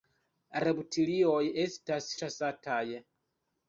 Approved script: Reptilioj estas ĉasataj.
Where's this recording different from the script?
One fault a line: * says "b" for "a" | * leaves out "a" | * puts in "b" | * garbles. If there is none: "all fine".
all fine